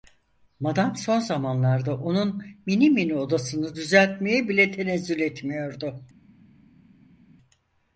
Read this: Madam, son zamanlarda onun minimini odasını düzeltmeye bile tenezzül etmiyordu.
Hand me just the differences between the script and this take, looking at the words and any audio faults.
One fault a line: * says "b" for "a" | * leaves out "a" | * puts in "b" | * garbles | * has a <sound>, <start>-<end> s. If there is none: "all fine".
all fine